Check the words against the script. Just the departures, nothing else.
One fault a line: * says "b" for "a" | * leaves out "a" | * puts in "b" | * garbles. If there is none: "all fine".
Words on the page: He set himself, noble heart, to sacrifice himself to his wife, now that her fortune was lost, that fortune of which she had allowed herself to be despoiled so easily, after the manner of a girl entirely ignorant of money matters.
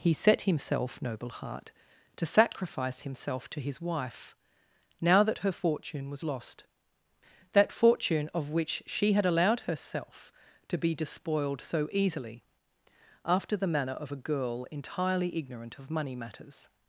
all fine